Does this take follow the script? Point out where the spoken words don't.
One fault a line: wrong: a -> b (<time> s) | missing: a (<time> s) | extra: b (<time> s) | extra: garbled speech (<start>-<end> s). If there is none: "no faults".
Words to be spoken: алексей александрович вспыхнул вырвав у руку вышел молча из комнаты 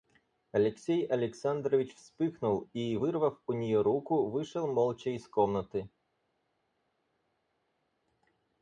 extra: и (2.7 s)
extra: нее (3.5 s)